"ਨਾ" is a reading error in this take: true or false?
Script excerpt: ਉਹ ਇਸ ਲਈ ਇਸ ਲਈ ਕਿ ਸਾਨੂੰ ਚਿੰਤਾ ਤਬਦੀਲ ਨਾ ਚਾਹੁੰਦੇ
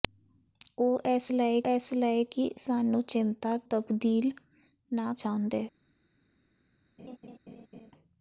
false